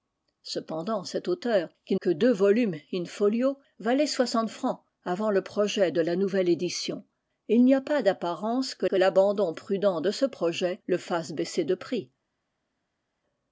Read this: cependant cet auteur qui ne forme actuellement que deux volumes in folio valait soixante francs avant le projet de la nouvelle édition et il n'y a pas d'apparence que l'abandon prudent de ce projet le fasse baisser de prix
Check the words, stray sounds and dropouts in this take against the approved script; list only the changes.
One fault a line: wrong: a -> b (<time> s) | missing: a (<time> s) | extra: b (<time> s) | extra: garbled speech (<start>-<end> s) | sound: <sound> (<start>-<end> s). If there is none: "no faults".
missing: ne forme actuellement (1.9 s)
extra: que (8.8 s)